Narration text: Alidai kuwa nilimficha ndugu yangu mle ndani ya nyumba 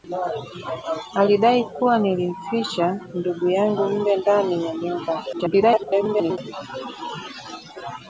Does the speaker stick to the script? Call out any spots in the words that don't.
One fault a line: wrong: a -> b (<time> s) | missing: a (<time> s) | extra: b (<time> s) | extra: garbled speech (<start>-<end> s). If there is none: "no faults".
extra: garbled speech (5.3-6.4 s)